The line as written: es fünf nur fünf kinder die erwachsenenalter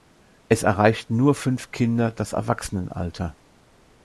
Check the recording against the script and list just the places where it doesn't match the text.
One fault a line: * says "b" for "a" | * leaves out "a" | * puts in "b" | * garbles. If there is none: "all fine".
* says "erreichten" for "fünf"
* says "das" for "die"